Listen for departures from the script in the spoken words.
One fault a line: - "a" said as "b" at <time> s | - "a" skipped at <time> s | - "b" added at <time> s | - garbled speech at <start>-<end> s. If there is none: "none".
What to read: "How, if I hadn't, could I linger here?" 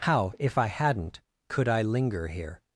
none